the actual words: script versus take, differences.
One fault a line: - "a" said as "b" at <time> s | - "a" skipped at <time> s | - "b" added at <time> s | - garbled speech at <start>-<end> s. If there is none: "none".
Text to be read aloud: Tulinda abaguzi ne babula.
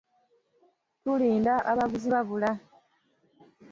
- "ne" skipped at 2.1 s